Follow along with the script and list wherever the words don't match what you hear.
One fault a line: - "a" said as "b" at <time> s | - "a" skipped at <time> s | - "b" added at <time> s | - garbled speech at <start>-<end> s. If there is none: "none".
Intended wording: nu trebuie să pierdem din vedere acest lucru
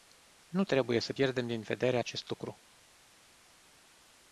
none